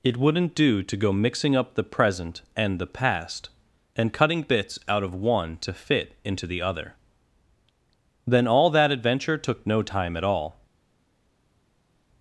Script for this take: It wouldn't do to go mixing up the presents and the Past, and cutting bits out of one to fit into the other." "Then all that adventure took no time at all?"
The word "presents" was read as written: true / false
false